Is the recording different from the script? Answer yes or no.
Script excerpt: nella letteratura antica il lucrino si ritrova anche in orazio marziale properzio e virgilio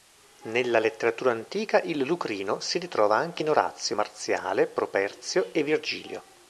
no